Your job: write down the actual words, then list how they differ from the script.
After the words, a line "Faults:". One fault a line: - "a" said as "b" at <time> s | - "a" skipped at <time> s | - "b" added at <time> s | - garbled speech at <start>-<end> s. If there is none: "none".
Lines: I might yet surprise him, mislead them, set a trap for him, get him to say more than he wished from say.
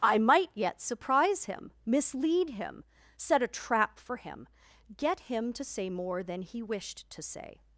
I might yet surprise him, mislead him, set a trap for him, get him to say more than he wished to say.
Faults:
- "them" said as "him" at 2.5 s
- "from" said as "to" at 7.1 s